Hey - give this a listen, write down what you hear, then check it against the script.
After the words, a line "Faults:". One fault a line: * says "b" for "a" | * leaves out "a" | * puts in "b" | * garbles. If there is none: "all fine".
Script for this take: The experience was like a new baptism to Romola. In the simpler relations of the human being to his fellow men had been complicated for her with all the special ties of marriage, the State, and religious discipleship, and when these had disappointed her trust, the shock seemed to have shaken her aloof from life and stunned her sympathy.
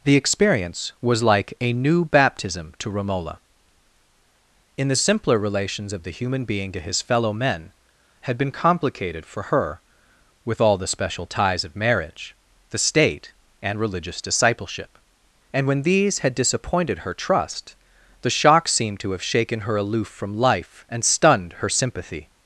The experience was like a new baptism to Romola. In the simpler relations of the human being to his fellow men had been complicated for her with all the special ties of marriage, the State, and religious discipleship, and when these had disappointed her trust, the shock seemed to have shaken her aloof from life and stunned her sympathy.
Faults:
all fine